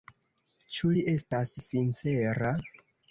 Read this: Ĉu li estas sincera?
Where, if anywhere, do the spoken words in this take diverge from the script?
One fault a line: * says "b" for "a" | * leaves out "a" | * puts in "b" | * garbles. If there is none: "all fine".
all fine